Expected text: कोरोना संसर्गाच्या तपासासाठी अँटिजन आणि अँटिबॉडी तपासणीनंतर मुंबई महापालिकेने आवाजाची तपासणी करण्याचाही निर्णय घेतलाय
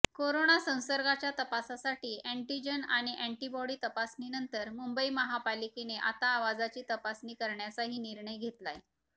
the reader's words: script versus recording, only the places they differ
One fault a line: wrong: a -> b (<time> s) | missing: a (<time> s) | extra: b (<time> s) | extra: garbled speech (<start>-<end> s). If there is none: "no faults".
extra: आता (6.0 s)